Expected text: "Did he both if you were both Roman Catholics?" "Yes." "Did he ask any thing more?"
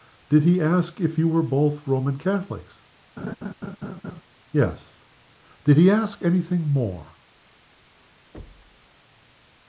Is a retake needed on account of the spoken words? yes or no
yes